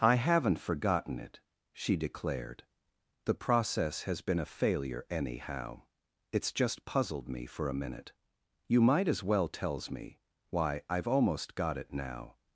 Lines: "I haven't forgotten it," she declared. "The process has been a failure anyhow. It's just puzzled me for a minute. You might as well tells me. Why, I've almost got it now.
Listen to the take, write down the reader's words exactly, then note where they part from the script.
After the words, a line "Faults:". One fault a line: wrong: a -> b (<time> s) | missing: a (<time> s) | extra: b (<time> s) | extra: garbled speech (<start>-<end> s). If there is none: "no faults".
"I haven't forgotten it," she declared. "The process has been a failure anyhow. It's just puzzled me for a minute. You might as well tells me. Why, I've almost got it now.
Faults:
no faults